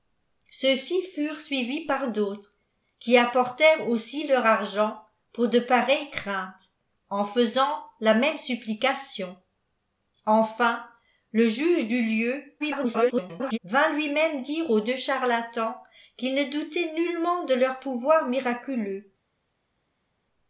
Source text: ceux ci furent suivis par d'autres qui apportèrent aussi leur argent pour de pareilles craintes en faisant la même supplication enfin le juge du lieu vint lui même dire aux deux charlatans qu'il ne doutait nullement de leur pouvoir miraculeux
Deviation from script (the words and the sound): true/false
true